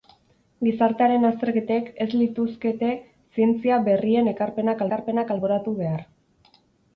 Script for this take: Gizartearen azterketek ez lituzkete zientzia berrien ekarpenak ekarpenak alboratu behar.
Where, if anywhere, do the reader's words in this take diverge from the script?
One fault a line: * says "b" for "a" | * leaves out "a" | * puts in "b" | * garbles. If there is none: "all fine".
all fine